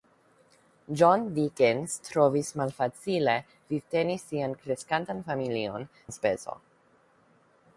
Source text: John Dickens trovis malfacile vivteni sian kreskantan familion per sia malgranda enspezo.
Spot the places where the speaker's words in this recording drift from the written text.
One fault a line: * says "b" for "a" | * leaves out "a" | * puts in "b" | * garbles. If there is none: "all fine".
* leaves out "per sia malgranda"